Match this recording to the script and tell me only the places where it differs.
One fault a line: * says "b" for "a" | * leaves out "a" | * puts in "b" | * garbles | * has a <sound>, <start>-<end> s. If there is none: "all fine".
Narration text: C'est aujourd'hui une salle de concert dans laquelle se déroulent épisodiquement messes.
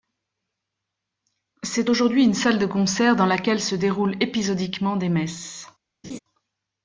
* puts in "des"
* has a laugh, 6.0-6.2 s